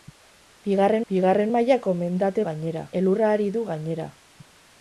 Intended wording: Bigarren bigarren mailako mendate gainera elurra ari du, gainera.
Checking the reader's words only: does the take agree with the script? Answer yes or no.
yes